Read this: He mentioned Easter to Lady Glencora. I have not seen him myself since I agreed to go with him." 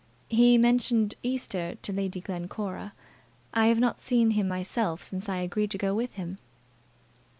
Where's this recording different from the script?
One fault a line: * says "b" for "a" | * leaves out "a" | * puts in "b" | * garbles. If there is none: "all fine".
all fine